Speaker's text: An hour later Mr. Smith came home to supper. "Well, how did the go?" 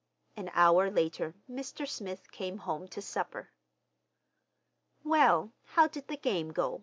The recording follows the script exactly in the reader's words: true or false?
false